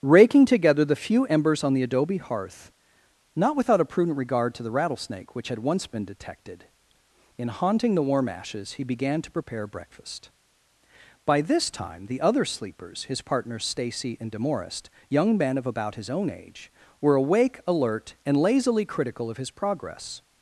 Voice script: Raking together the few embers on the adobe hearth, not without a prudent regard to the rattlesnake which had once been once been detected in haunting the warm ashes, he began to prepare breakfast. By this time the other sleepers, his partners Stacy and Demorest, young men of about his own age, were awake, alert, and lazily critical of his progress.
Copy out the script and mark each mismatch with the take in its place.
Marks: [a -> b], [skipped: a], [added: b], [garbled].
Raking together the few embers on the adobe hearth, not without a prudent regard to the rattlesnake which had once been [skipped: once been] detected in haunting the warm ashes, he began to prepare breakfast. By this time the other sleepers, his partners Stacy and Demorest, young men of about his own age, were awake, alert, and lazily critical of his progress.